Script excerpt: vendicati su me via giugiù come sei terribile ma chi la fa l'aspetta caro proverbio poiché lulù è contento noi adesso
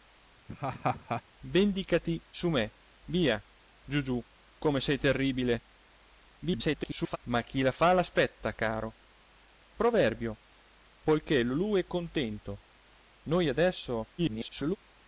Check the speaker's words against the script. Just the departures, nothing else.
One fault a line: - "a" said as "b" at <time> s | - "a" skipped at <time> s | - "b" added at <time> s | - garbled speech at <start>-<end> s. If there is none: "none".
- garbled speech at 6.4-7.2 s
- garbled speech at 14.2-14.8 s